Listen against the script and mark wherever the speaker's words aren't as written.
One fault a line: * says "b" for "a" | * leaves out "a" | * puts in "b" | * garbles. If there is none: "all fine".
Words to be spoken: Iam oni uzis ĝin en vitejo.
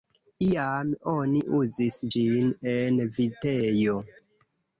all fine